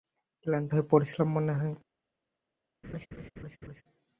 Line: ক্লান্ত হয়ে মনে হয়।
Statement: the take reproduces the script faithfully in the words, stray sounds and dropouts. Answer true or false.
false